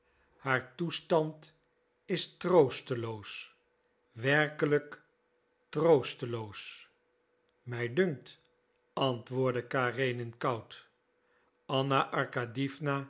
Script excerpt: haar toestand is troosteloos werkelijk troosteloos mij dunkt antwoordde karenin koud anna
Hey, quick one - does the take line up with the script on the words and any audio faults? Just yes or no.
yes